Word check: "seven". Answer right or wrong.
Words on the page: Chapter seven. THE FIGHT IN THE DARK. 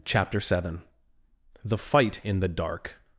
right